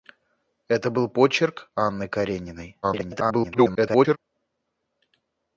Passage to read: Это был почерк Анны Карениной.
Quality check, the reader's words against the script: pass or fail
fail